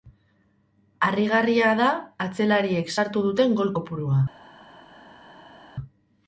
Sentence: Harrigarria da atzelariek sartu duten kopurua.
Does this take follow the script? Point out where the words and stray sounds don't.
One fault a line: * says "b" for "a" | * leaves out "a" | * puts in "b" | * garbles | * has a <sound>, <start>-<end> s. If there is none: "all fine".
* puts in "gol"